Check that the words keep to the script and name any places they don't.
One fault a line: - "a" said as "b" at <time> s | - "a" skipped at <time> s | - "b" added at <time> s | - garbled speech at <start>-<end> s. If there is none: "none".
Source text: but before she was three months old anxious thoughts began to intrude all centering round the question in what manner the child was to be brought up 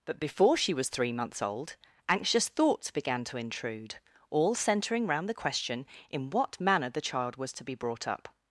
none